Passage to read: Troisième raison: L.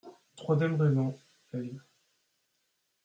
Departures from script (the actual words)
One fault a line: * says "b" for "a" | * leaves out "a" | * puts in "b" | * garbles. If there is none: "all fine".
all fine